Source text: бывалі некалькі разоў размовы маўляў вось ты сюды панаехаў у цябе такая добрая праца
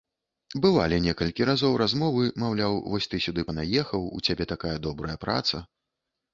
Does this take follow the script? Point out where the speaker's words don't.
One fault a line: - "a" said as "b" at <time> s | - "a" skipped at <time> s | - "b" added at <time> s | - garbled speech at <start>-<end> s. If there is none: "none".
none